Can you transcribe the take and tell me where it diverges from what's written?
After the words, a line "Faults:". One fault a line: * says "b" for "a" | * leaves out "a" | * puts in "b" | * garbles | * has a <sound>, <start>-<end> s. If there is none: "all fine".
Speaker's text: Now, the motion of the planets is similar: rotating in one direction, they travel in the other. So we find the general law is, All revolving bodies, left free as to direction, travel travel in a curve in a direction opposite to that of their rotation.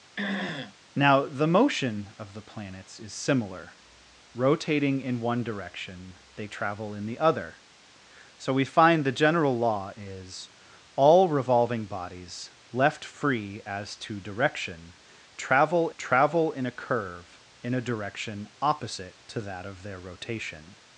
Now, the motion of the planets is similar: rotating in one direction, they travel in the other. So we find the general law is, All revolving bodies, left free as to direction, travel travel in a curve in a direction opposite to that of their rotation.
Faults:
* has a throat clearing, 0.2-0.8 s